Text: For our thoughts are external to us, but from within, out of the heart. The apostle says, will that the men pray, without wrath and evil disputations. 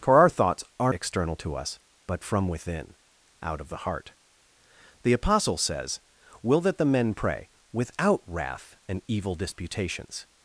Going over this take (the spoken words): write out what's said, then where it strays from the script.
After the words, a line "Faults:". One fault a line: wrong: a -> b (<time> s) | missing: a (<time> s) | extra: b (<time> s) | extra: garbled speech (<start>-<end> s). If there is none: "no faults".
For our thoughts are external to us, but from within, out of the heart. The apostle says, will that the men pray, without wrath and evil disputations.
Faults:
no faults